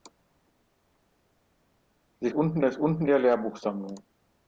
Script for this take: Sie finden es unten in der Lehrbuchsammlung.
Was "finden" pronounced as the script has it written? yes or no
no